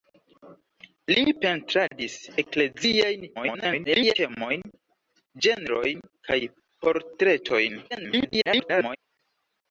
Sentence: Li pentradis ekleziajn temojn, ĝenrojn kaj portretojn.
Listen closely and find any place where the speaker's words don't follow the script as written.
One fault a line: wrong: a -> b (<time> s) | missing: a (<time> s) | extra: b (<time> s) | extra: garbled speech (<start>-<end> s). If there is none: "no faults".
extra: garbled speech (3.4-4.2 s)
extra: garbled speech (7.9-9.0 s)